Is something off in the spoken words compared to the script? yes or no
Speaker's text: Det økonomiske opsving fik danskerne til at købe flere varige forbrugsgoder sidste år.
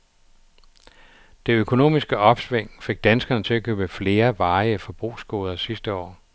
no